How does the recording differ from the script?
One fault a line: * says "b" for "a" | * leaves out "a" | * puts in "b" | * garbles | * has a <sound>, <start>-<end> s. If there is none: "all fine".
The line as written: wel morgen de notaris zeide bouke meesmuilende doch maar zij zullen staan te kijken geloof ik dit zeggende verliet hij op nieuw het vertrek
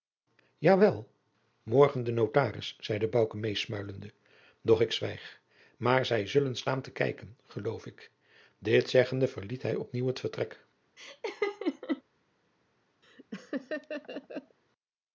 * puts in "ik zwijg"
* has a laugh, 11.0-12.0 s
* has a laugh, 13.0-14.6 s